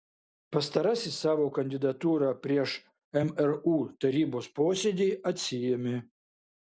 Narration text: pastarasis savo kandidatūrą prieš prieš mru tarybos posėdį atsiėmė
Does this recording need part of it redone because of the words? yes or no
yes